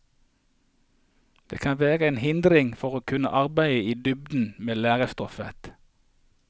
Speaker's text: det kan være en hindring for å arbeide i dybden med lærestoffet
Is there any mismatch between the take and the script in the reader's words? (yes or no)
yes